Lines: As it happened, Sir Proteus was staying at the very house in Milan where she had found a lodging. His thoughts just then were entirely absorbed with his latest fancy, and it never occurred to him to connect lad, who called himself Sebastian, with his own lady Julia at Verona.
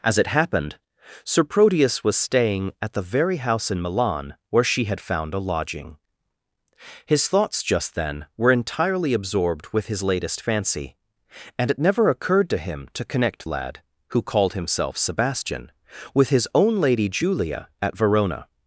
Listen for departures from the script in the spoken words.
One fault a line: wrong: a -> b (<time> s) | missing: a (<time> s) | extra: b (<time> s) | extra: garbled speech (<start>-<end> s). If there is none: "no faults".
no faults